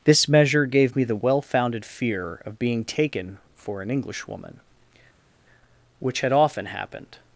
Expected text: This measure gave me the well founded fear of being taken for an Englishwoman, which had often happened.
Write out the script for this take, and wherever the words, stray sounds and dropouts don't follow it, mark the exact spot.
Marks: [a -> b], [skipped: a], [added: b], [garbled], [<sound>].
This measure gave me the well founded fear of being taken for an Englishwoman, which had often happened.